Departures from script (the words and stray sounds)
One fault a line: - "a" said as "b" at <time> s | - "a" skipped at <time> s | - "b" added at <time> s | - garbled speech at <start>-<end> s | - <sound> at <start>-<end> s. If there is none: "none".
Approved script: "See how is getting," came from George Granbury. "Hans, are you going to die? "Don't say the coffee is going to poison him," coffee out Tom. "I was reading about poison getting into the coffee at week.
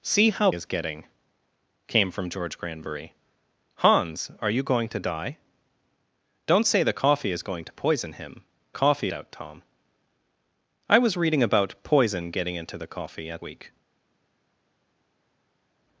none